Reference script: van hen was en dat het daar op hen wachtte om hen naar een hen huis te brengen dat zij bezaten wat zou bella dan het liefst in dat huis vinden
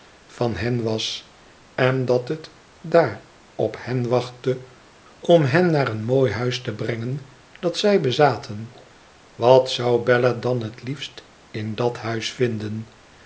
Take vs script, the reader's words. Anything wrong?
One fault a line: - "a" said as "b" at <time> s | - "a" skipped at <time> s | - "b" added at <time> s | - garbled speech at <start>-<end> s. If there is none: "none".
- "hen" said as "mooi" at 6.0 s